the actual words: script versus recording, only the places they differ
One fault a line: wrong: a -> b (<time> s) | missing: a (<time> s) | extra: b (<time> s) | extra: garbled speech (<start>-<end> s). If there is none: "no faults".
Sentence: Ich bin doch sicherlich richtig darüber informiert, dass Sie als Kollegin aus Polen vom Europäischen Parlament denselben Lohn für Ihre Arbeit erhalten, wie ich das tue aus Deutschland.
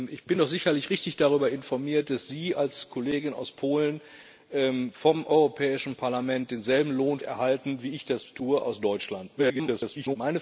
missing: für Ihre Arbeit (7.2 s)
extra: garbled speech (9.4-10.2 s)